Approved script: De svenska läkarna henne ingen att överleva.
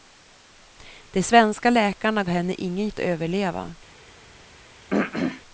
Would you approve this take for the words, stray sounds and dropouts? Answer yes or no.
no